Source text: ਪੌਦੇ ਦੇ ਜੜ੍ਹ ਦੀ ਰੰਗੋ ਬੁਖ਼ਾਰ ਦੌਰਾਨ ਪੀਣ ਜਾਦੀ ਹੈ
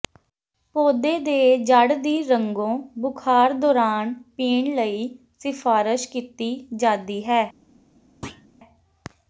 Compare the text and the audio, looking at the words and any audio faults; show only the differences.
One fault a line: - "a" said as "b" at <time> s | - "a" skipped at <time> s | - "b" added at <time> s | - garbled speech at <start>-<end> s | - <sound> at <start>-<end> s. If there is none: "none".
- "ਲਈ ਸਿਫਾਰਸ਼ ਕੀਤੀ" added at 4.8 s
- thud at 8.2-8.5 s